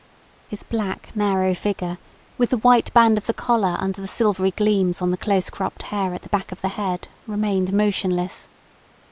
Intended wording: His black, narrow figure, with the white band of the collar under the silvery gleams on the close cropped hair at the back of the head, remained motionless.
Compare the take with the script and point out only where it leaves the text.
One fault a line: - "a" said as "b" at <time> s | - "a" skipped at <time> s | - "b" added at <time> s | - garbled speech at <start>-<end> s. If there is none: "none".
none